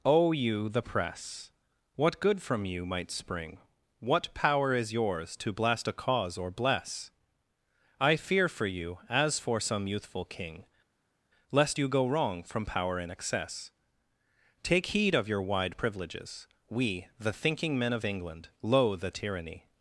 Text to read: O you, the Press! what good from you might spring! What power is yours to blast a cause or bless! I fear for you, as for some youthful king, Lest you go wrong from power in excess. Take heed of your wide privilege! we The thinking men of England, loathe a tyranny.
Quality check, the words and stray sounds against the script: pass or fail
fail